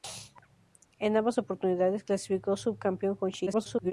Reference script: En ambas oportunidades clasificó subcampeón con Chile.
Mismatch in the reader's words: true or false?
true